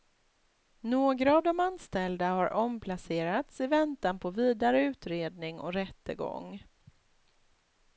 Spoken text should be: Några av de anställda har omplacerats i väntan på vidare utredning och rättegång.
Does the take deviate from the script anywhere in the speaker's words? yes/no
no